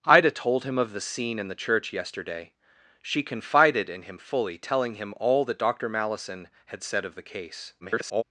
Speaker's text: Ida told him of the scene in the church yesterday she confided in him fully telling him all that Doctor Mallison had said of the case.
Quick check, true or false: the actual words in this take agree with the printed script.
false